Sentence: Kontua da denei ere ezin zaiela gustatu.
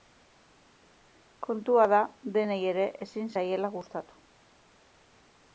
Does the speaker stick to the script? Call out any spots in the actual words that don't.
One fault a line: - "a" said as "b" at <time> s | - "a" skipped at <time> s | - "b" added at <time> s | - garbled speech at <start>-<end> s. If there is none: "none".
none